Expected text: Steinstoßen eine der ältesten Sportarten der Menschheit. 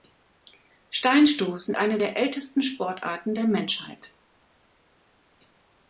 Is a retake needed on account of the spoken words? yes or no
no